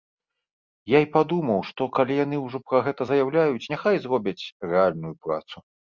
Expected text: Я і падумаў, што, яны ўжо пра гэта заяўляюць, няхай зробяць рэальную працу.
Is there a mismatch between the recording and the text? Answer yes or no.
yes